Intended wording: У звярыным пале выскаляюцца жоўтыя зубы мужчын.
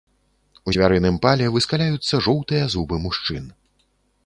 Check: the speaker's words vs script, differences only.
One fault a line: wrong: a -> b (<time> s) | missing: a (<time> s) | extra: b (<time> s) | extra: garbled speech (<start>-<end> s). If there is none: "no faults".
no faults